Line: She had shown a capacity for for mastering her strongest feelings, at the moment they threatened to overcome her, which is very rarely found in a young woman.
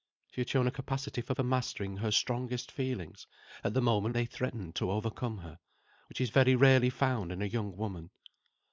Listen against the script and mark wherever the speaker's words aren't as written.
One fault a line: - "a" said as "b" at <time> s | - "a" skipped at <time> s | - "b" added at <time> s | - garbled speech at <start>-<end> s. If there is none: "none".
none